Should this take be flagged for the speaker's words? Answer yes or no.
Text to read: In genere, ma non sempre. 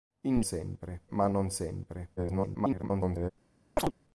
yes